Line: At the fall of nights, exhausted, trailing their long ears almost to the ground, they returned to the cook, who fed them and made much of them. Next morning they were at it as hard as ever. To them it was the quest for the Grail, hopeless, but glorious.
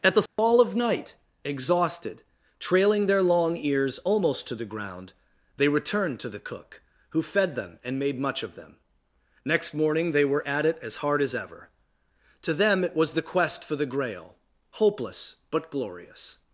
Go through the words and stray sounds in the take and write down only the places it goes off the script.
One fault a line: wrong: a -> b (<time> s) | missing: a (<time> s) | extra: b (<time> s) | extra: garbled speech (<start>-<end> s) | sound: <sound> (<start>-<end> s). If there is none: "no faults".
sound: dropout (0.3-0.4 s)
wrong: nights -> night (0.8 s)